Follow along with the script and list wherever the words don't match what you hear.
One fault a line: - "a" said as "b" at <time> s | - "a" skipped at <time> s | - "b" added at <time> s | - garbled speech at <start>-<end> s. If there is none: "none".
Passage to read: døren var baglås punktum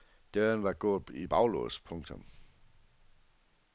- "gået i" added at 0.7 s